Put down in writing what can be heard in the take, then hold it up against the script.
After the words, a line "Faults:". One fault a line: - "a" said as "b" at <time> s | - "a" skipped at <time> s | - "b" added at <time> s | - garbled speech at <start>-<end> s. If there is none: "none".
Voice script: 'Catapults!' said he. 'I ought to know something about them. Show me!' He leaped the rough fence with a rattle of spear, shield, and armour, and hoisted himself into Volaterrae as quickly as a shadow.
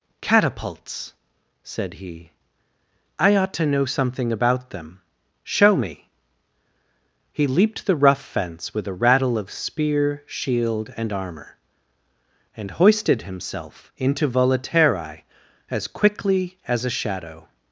'Catapults!' said he. 'I ought to know something about them. Show me!' He leaped the rough fence with a rattle of spear, shield, and armour, and hoisted himself into Volaterrae as quickly as a shadow.
Faults:
none